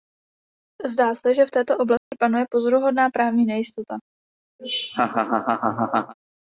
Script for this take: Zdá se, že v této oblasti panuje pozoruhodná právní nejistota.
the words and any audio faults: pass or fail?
fail